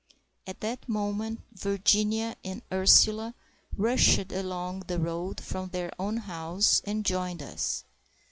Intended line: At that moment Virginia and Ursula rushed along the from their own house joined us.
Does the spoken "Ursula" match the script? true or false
true